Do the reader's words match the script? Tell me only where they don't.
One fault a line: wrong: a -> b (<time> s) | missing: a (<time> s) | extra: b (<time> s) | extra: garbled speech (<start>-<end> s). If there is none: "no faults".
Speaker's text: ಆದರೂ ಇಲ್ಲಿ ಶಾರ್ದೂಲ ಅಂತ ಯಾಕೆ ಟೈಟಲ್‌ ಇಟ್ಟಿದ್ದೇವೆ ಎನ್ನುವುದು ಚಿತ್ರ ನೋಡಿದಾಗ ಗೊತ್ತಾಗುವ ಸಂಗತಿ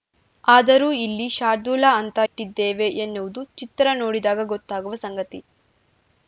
missing: ಯಾಕೆ ಟೈಟಲ್ (2.2 s)